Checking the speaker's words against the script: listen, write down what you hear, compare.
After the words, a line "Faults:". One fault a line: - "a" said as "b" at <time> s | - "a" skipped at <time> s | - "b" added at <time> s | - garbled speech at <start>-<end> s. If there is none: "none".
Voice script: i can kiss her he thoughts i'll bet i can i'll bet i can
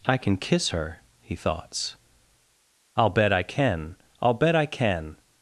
i can kiss her he thoughts i'll bet i can i'll bet i can
Faults:
none